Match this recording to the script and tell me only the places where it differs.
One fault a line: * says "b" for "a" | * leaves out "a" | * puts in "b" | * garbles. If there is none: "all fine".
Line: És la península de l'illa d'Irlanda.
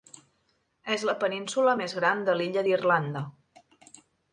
* puts in "més gran"